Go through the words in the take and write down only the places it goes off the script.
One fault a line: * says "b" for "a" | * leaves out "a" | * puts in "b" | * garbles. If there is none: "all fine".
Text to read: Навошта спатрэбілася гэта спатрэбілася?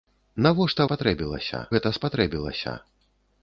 all fine